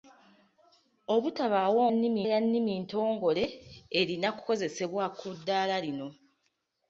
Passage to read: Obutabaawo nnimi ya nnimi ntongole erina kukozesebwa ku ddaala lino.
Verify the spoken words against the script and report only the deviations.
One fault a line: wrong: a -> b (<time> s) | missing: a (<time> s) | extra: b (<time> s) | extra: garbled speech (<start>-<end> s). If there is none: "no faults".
no faults